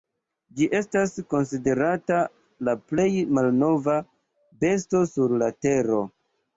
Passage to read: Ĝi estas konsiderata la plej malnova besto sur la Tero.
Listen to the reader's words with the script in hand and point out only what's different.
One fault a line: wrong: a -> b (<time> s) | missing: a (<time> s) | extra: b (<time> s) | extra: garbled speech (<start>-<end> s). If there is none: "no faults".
no faults